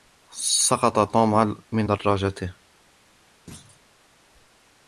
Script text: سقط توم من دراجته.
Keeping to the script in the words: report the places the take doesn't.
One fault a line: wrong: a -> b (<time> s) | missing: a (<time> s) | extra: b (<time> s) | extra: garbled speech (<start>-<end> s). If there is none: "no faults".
no faults